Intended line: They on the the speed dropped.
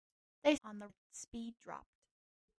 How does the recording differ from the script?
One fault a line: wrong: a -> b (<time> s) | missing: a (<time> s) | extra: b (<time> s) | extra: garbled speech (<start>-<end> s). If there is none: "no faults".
no faults